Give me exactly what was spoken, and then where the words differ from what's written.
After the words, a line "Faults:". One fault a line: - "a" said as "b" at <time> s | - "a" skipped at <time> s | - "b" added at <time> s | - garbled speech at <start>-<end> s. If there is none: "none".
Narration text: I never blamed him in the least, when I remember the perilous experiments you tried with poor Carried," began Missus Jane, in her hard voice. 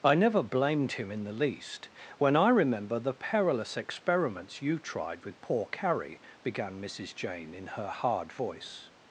I never blamed him in the least, when I remember the perilous experiments you tried with poor Carrie," began Missus Jane, in her hard voice.
Faults:
- "Carried" said as "Carrie" at 5.7 s